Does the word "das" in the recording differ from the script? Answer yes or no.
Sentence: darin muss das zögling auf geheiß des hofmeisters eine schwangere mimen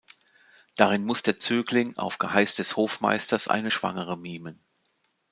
yes